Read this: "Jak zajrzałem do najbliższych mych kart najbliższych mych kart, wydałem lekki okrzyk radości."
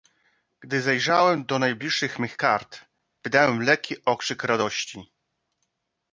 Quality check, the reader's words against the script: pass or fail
fail